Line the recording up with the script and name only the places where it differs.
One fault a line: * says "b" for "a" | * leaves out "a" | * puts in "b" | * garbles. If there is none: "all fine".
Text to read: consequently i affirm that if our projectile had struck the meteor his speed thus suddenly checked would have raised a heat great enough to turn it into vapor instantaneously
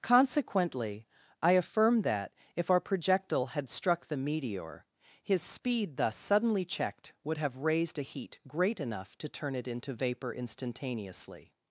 all fine